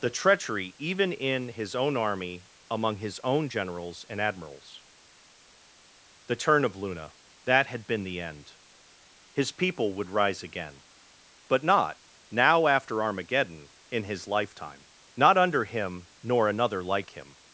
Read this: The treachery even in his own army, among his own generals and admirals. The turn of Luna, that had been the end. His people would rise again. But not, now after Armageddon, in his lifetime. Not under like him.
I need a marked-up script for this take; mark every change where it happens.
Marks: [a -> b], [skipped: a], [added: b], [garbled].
The treachery even in his own army, among his own generals and admirals. The turn of Luna, that had been the end. His people would rise again. But not, now after Armageddon, in his lifetime. Not under [added: him nor another] like him.